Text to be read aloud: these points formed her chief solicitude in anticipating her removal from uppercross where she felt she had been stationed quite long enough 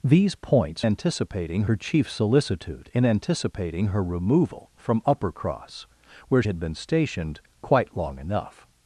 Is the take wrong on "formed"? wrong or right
wrong